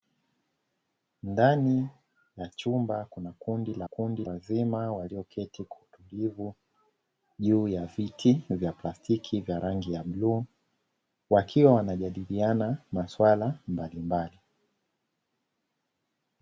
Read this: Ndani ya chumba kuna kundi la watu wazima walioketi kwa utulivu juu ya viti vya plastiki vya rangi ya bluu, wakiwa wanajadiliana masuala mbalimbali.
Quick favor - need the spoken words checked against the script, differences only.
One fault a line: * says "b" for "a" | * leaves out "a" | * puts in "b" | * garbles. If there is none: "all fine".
* says "kundi" for "watu"